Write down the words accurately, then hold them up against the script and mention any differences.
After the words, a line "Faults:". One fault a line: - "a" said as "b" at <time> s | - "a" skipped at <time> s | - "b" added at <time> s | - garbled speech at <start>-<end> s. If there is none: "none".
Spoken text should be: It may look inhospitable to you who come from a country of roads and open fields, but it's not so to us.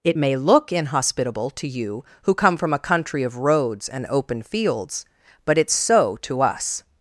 It may look inhospitable to you who come from a country of roads and open fields, but it's so to us.
Faults:
- "not" skipped at 5.7 s